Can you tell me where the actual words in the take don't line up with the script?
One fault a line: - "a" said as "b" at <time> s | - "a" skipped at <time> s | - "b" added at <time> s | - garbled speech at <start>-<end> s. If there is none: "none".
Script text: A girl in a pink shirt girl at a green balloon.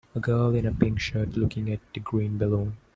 - "girl" said as "looking" at 1.4 s